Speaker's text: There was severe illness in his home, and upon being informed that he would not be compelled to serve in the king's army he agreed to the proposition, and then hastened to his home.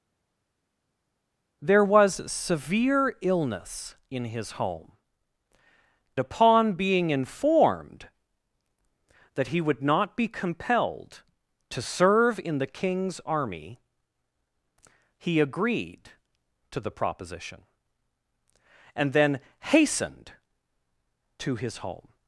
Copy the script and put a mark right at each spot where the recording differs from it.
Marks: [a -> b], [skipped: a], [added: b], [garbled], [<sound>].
There was severe illness in his home, [skipped: and] upon being informed that he would not be compelled to serve in the king's army he agreed to the proposition, and then hastened to his home.